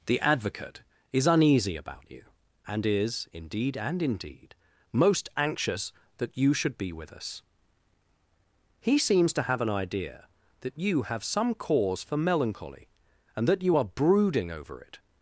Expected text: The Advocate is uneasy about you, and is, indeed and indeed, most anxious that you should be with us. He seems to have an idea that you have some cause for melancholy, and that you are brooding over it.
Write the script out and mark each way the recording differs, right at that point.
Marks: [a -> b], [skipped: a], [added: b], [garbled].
The Advocate is uneasy about you, and is, indeed and indeed, most anxious that you should be with us. He seems to have an idea that you have some cause for melancholy, and that you are brooding over it.